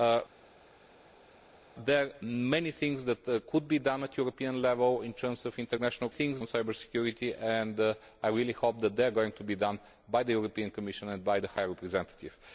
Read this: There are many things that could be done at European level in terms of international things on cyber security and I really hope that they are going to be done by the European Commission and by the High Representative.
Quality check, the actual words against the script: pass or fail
pass